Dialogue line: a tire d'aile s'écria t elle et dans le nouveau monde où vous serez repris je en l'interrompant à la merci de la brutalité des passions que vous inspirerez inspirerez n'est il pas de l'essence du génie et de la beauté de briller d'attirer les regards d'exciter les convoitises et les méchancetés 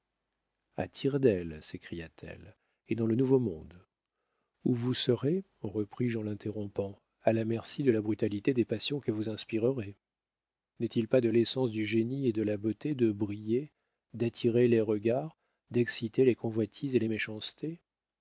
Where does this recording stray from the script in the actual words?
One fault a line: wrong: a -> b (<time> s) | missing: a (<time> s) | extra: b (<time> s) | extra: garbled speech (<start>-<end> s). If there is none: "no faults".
missing: inspirerez (9.9 s)